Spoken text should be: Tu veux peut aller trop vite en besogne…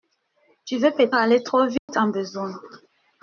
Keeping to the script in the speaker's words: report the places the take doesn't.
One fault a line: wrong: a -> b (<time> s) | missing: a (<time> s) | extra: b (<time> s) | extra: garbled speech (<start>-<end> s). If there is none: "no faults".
no faults